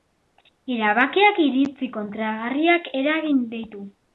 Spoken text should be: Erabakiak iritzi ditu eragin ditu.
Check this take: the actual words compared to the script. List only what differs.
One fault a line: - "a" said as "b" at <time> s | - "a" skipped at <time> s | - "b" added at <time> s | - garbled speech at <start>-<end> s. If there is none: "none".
- "ditu" said as "kontrajarriak" at 2.0 s